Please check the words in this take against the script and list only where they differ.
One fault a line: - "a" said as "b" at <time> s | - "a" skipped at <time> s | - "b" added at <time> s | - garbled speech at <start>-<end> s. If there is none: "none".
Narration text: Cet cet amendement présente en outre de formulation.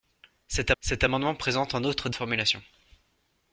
none